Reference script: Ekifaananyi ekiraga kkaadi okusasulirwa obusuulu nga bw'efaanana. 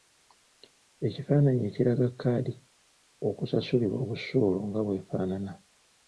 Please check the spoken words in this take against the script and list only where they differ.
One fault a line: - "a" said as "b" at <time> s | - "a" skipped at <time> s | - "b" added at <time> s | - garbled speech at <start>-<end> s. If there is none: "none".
none